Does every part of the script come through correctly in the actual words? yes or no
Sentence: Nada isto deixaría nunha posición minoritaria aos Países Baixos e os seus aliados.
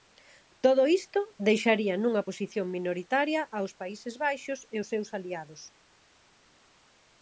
no